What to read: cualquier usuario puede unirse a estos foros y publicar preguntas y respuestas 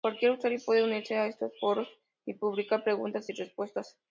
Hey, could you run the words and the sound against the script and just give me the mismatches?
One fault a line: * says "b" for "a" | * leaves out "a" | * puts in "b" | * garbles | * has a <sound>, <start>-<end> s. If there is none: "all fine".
all fine